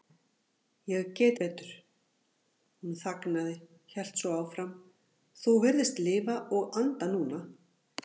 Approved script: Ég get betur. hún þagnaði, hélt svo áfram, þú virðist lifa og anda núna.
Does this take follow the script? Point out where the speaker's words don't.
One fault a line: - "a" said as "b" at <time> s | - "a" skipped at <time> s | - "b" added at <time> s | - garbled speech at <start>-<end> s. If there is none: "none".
none